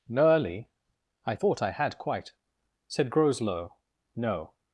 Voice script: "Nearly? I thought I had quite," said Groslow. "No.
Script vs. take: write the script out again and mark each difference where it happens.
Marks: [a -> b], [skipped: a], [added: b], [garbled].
"Nearly? I thought I had quite," said Groslow. "No.